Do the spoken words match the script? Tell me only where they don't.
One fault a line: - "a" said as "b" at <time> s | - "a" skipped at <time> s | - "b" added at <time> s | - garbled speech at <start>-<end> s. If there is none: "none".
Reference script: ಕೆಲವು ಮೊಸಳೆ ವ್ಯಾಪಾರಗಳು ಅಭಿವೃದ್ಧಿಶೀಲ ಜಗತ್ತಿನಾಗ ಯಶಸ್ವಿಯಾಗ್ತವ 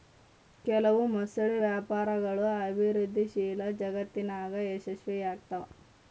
none